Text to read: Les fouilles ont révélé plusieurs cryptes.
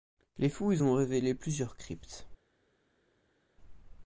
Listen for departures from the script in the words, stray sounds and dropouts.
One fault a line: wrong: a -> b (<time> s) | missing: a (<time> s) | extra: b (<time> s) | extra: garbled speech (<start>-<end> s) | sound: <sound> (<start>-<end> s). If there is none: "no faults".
no faults